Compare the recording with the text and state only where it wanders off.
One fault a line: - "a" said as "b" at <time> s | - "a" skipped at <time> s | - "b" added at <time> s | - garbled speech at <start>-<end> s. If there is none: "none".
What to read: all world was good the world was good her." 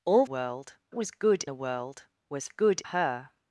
none